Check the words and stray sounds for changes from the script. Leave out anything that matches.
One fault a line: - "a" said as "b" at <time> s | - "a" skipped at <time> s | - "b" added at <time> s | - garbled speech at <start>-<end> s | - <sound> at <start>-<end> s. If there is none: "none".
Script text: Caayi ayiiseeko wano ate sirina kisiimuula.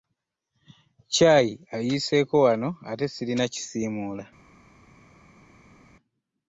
none